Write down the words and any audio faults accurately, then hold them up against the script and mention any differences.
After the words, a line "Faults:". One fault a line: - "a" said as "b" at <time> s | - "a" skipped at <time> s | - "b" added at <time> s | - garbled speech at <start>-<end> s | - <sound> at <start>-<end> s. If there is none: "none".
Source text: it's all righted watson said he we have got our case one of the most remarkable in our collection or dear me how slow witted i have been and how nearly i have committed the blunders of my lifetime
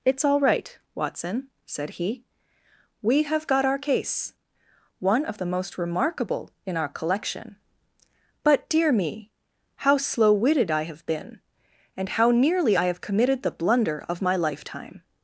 it's all right watson said he we have got our case one of the most remarkable in our collection but dear me how slow witted i have been and how nearly i have committed the blunder of my lifetime
Faults:
- "righted" said as "right" at 0.4 s
- "or" said as "but" at 8.4 s
- "blunders" said as "blunder" at 13.5 s